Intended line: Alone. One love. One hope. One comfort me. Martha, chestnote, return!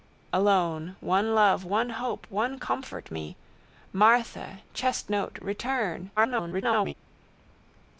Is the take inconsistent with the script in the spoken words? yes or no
yes